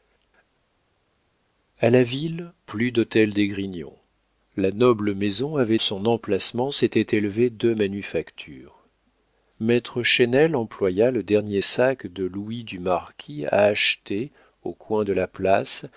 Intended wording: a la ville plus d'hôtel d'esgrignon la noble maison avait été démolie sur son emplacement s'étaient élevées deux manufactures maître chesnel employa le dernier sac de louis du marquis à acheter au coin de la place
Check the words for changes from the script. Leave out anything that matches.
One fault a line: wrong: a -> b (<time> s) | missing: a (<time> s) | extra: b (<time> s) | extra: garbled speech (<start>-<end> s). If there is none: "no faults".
missing: été démolie sur (5.8 s)